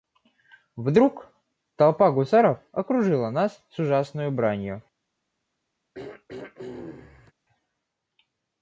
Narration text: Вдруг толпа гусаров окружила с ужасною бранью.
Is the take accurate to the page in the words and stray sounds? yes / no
no